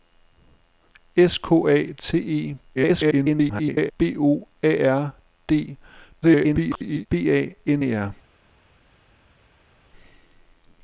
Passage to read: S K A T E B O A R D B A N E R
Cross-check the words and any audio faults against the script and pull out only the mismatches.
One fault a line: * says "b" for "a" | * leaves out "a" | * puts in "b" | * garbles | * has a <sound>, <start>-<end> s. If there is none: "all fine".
* garbles
* garbles